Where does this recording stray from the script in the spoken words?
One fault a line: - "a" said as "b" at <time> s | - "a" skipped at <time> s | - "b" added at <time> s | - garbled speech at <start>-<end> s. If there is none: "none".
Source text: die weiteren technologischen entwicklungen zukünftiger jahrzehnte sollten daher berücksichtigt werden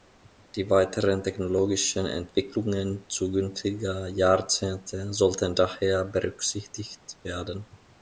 none